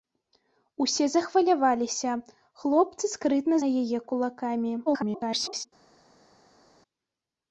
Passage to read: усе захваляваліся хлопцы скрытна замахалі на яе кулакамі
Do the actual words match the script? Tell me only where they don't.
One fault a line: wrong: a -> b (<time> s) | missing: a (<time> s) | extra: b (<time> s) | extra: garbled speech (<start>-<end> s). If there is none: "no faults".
missing: замахалі (3.5 s)
extra: garbled speech (4.9-5.7 s)